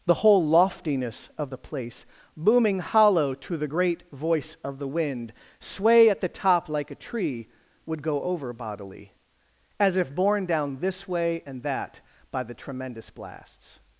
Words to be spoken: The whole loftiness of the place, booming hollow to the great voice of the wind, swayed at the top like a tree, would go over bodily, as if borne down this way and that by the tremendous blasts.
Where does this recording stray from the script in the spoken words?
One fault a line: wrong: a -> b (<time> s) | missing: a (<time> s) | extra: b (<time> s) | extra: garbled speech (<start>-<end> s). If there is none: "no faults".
wrong: swayed -> sway (5.6 s)